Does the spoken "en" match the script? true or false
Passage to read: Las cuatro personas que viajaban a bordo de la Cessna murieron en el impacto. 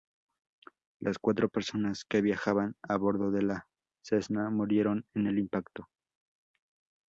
true